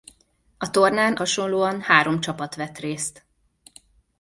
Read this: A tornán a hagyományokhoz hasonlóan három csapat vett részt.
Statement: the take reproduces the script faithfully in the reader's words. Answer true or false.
false